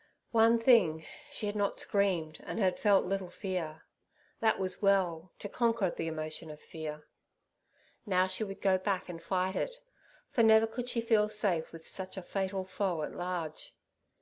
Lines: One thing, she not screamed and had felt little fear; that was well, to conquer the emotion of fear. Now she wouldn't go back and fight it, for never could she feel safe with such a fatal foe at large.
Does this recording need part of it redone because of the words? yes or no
yes